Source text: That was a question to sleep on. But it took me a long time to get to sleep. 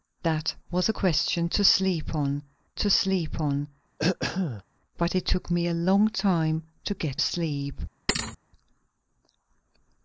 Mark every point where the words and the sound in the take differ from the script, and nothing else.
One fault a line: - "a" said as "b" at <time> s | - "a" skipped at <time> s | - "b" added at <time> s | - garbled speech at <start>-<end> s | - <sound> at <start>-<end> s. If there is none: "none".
- "to sleep on" added at 2.8 s
- throat clearing at 4.0-4.6 s
- "to" skipped at 7.2 s
- thud at 8.1-8.4 s